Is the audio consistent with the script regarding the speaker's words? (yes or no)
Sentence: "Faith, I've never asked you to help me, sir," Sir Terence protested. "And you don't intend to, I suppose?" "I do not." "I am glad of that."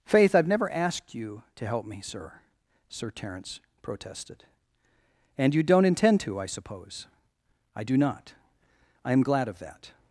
yes